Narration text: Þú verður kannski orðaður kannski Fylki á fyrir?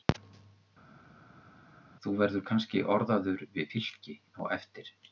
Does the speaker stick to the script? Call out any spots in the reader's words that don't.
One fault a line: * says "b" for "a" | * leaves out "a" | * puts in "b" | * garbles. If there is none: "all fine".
* says "við" for "kannski"
* says "eftir" for "fyrir"